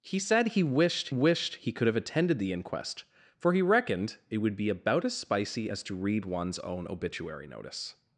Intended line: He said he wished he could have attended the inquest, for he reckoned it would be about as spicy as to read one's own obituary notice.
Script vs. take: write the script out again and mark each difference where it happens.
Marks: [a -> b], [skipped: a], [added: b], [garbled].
He said he wished [added: wished] he could have attended the inquest, for he reckoned it would be about as spicy as to read one's own obituary notice.